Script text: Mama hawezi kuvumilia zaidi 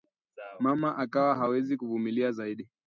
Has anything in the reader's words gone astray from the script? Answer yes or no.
yes